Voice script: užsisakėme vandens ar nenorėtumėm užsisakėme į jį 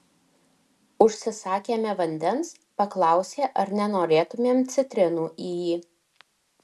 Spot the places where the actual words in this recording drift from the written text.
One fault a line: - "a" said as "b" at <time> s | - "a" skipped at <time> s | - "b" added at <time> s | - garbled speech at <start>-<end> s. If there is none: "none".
- "paklausė" added at 2.8 s
- "užsisakėme" said as "citrinų" at 4.8 s